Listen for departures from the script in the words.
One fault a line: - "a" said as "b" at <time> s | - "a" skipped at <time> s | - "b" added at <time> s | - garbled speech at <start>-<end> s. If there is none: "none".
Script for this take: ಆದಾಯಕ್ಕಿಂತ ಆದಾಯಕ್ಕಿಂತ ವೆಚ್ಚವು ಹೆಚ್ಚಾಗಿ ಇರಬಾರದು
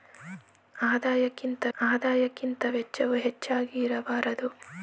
none